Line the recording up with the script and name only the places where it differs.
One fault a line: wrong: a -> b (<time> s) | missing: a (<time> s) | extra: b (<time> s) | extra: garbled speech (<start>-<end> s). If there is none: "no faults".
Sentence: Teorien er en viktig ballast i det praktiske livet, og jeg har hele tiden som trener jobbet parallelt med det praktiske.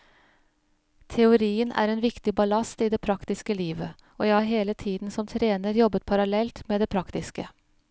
no faults